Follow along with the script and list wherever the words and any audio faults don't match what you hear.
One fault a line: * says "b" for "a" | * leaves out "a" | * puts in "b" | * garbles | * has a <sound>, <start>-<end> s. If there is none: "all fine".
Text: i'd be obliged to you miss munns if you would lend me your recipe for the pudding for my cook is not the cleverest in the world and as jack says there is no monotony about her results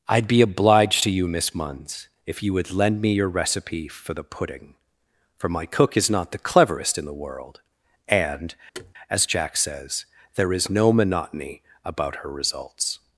* has a thud, 8.7-8.9 s